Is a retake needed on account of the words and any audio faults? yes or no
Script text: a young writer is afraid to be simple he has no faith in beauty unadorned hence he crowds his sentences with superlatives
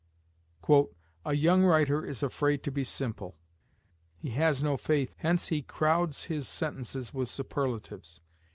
yes